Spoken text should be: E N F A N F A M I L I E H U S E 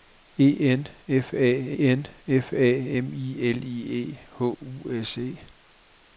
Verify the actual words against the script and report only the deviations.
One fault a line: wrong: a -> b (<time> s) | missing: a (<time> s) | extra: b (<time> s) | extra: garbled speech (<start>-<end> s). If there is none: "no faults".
no faults